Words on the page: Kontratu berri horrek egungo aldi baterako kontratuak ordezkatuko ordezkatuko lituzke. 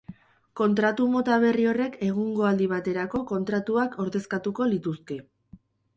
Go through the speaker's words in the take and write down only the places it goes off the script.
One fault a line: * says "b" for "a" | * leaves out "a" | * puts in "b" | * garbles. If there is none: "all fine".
* puts in "mota"
* leaves out "ordezkatuko"